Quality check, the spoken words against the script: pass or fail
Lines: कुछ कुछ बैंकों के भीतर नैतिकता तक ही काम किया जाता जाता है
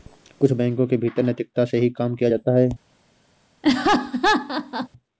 fail